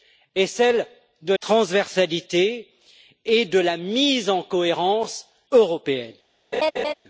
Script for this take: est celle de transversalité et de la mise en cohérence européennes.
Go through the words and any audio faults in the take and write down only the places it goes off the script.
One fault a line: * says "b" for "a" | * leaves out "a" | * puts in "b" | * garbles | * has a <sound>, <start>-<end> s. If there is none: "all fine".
* has a laugh, 6.5-6.9 s